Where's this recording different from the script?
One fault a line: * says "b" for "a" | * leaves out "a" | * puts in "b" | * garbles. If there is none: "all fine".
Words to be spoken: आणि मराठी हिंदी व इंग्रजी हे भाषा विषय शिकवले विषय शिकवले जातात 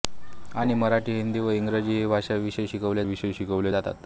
all fine